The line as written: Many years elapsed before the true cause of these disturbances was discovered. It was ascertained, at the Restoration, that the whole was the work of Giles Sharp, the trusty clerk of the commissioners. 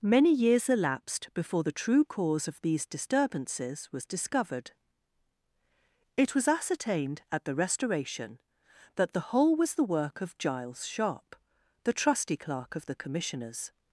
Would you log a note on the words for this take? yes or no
no